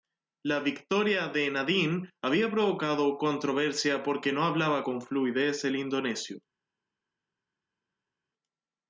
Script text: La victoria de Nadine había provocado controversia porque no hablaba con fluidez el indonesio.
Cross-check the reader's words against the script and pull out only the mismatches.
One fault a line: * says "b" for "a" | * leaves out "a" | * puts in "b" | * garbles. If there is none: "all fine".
all fine